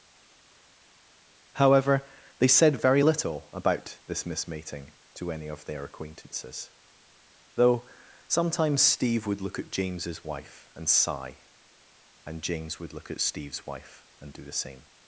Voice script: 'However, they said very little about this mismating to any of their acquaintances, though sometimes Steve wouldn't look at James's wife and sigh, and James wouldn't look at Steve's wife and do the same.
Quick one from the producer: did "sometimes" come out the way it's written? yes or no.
yes